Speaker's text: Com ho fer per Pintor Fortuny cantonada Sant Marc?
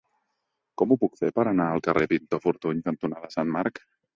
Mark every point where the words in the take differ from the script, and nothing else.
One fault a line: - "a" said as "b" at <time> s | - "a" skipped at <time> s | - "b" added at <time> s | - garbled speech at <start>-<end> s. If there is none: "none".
- "puc" added at 1.0 s
- "anar al carrer" added at 1.5 s